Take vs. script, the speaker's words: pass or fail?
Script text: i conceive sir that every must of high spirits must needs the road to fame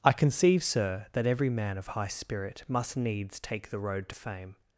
fail